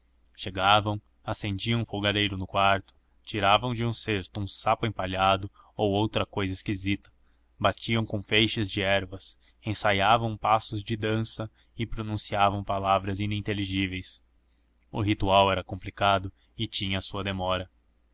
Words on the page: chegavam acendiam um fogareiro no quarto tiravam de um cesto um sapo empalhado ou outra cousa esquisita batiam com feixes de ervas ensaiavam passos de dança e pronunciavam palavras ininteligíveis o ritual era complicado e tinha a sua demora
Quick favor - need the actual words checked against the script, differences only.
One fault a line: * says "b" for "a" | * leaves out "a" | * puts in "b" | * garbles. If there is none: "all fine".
all fine